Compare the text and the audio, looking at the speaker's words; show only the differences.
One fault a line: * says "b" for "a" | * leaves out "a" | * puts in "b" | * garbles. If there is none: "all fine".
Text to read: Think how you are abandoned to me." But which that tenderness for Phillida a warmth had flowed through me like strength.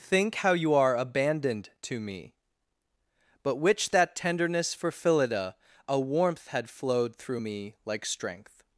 all fine